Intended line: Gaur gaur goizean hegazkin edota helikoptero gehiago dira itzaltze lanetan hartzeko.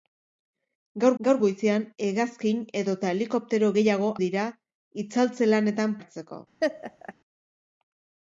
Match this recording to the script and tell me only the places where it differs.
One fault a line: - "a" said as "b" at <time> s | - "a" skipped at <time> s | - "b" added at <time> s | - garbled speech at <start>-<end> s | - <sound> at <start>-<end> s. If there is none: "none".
- laugh at 6.6-7.1 s